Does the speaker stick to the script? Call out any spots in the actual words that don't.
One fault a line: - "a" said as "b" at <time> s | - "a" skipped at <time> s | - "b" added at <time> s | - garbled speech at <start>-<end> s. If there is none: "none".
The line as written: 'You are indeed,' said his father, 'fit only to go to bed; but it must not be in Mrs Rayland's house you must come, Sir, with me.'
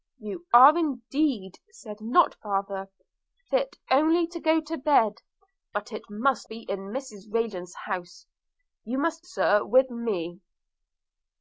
- "his" said as "not" at 2.0 s
- "not" skipped at 6.5 s
- "come" skipped at 9.2 s